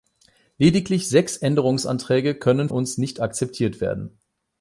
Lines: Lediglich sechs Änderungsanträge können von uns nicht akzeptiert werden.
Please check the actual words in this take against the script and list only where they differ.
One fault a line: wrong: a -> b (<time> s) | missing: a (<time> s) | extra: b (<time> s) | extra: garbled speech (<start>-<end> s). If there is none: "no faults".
missing: von (2.7 s)